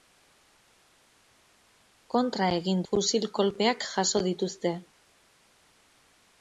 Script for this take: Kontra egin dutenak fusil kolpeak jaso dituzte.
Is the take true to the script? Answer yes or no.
no